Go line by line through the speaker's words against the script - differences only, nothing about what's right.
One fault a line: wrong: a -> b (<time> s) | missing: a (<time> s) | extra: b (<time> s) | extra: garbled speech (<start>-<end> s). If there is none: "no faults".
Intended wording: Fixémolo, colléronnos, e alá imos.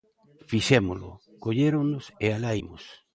no faults